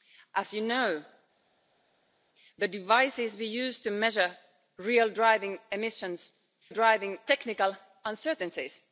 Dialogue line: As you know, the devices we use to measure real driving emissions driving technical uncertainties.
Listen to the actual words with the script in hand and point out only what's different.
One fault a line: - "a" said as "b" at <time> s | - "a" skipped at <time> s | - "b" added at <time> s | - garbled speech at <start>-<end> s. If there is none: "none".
none